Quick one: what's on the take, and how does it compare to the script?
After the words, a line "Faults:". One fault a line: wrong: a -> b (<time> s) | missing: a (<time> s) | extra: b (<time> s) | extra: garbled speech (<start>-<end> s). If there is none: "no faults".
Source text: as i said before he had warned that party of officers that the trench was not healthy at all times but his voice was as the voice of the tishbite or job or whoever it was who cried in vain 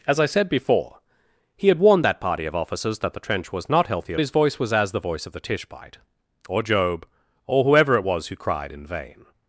as i said before he had warned that party of officers that the trench was not healthy at his voice was as the voice of the tishbite or job or whoever it was who cried in vain
Faults:
missing: all times but (4.2 s)